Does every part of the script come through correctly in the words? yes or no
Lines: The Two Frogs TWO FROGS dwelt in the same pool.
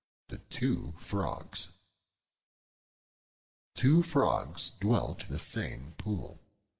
no